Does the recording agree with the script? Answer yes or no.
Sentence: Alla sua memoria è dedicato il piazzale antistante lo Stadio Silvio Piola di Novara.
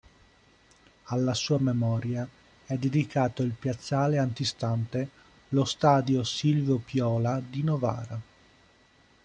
yes